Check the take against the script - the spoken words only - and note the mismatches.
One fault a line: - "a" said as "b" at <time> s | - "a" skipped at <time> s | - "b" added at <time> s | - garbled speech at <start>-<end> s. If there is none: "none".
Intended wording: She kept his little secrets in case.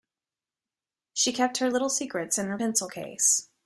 - "his" said as "her" at 1.6 s
- "her pencil" added at 2.5 s